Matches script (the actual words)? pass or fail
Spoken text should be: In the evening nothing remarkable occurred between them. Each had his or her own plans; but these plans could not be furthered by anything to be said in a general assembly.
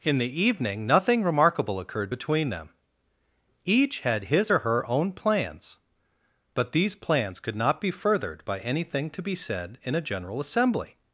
pass